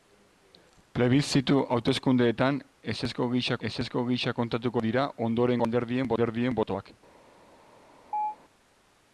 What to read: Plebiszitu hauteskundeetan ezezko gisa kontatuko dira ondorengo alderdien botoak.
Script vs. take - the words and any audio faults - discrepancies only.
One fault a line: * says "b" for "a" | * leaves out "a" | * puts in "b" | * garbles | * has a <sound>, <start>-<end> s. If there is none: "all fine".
* puts in "ezezko gisa"
* puts in "alderdien"
* has a chirp, 8.1-8.4 s